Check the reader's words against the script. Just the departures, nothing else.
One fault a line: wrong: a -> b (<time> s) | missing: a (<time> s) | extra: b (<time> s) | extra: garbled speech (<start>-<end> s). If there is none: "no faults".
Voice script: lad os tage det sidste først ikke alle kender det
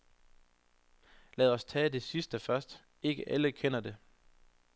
no faults